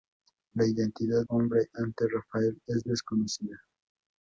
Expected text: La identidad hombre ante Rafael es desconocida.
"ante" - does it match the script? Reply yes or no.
yes